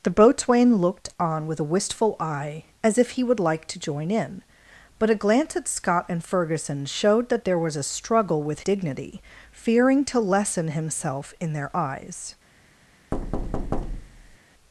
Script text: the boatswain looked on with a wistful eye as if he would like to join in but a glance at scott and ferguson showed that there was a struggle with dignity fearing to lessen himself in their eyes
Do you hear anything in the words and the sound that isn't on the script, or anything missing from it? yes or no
yes